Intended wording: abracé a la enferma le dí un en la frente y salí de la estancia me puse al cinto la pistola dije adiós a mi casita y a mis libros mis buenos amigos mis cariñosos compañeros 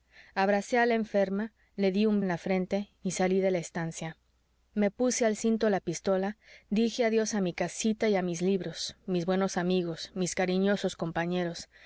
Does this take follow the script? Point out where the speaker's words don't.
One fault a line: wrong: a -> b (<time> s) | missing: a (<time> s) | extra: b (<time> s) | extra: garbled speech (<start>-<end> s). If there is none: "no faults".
no faults